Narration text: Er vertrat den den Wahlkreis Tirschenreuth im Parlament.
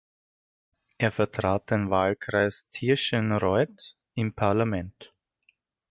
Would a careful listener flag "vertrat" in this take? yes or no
no